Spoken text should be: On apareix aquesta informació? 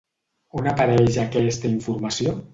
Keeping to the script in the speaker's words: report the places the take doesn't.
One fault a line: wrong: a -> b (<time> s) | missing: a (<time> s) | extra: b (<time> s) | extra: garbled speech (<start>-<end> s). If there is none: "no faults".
no faults